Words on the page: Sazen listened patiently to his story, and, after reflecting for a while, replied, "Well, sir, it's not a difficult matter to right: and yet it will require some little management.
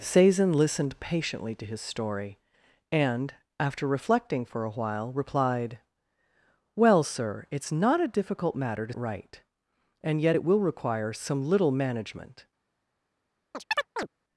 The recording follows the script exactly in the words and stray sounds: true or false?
false